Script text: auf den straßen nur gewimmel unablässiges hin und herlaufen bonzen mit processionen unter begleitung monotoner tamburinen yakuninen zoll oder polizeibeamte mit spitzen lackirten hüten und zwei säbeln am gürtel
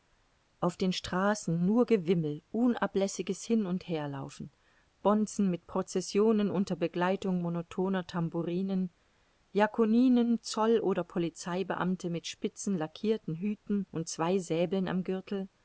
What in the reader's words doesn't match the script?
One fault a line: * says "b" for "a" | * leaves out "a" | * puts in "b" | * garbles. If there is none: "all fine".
all fine